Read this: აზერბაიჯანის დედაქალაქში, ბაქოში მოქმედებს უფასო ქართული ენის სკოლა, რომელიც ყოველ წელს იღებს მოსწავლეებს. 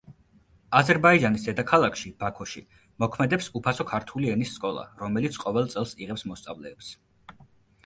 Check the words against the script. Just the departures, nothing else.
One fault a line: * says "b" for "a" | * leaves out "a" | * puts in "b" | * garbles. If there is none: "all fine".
all fine